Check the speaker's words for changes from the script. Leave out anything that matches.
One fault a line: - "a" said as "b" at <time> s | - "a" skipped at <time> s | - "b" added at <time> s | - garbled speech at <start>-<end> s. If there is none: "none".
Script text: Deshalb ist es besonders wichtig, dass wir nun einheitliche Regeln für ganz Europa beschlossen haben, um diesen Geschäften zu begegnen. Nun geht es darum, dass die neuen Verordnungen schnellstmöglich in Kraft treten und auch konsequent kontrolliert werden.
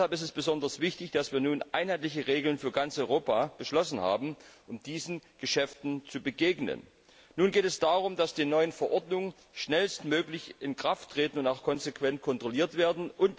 none